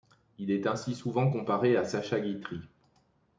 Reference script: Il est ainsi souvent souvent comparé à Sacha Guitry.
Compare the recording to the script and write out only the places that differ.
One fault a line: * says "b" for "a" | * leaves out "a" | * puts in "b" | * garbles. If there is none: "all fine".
* leaves out "souvent"